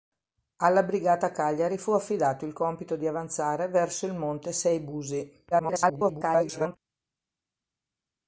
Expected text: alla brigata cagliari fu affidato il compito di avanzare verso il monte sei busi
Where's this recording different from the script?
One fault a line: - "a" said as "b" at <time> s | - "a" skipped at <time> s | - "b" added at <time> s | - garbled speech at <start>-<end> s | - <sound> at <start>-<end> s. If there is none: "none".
- garbled speech at 5.5-6.8 s